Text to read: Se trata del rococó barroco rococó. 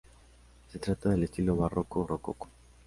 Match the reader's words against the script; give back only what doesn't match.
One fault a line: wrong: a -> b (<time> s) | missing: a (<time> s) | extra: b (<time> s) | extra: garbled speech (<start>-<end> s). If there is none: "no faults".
wrong: rococó -> estilo (1.2 s)